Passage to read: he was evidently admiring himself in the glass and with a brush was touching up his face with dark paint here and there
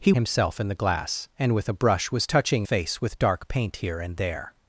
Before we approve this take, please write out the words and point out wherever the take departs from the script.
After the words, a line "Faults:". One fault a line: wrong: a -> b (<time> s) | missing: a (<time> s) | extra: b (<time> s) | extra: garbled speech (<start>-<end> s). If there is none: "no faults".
he himself in the glass and with a brush was touching face with dark paint here and there
Faults:
missing: was evidently admiring (0.1 s)
missing: up his (2.7 s)